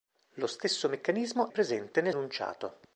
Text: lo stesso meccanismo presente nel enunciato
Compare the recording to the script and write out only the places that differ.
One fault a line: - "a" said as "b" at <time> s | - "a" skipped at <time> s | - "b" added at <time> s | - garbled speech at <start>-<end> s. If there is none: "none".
none